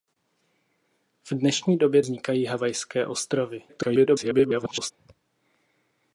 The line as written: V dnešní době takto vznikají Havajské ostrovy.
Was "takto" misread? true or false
true